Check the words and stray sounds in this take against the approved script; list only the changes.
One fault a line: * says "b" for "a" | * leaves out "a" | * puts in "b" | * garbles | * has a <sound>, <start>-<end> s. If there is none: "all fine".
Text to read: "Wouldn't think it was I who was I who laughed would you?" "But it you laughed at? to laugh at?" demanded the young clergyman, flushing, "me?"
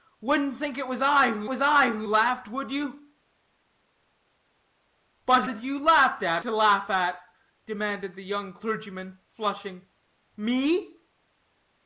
all fine